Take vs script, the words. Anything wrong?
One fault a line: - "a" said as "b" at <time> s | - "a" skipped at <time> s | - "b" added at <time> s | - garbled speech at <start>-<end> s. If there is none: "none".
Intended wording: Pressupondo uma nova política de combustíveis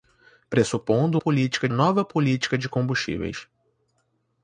- "uma" said as "política" at 1.2 s